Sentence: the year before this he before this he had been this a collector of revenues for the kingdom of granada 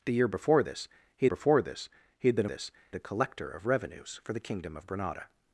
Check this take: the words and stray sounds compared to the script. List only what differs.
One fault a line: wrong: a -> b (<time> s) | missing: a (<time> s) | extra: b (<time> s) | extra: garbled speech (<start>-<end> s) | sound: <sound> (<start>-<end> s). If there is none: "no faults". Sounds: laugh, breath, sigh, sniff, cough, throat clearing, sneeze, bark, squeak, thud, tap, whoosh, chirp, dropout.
no faults